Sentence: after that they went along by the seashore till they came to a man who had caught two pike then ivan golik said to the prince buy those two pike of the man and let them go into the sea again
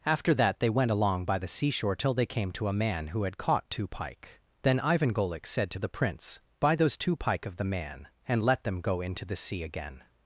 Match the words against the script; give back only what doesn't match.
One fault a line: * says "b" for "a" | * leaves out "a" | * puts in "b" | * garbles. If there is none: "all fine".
all fine